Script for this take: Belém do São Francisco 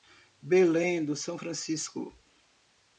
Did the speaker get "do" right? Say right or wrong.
right